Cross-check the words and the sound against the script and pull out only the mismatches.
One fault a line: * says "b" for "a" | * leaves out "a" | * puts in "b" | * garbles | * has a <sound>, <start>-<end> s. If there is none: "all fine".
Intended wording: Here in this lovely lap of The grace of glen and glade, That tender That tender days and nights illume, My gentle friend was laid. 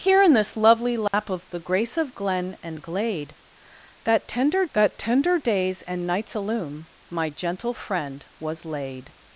* has a dropout, 1.1-1.1 s